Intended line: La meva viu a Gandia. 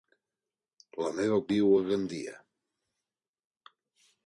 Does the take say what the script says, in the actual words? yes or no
yes